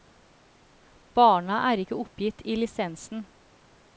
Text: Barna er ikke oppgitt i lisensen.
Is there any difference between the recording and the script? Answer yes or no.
no